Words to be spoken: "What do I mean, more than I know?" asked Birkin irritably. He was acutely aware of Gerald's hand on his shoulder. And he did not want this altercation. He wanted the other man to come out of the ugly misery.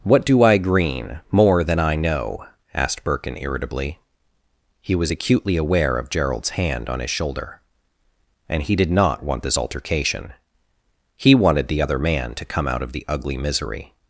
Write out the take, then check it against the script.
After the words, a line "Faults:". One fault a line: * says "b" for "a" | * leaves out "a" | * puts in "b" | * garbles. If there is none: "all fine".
"What do I green, more than I know?" asked Birkin irritably. He was acutely aware of Gerald's hand on his shoulder. And he did not want this altercation. He wanted the other man to come out of the ugly misery.
Faults:
* says "green" for "mean"